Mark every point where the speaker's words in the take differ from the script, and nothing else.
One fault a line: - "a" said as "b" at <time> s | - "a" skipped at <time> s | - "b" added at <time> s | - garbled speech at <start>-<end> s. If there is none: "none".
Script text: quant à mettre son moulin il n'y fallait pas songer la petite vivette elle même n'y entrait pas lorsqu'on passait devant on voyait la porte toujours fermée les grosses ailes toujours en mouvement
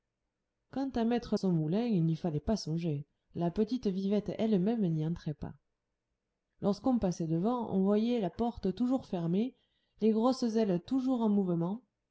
none